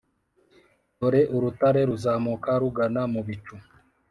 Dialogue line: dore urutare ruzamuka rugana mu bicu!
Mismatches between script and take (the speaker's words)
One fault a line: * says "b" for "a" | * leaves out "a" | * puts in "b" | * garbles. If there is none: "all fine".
all fine